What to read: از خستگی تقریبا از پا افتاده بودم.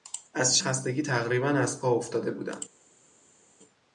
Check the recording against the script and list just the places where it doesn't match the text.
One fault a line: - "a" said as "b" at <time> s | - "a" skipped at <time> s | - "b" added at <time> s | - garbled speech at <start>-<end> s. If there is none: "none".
none